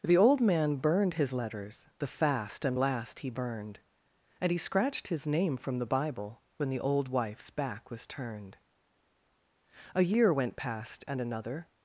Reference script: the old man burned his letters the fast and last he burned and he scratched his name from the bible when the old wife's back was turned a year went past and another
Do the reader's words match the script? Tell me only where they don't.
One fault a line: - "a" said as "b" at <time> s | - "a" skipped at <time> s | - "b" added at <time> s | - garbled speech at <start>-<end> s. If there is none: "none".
none